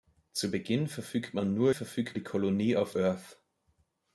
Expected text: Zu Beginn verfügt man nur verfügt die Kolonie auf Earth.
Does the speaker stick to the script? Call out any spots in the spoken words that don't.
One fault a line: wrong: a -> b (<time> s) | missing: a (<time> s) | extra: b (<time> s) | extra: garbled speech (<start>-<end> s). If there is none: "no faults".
no faults